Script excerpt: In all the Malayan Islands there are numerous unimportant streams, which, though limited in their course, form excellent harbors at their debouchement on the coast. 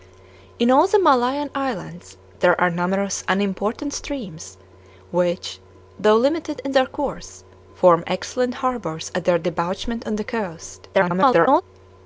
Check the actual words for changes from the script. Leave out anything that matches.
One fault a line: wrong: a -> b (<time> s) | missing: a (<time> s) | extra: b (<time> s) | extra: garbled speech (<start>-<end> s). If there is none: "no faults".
extra: garbled speech (10.9-11.6 s)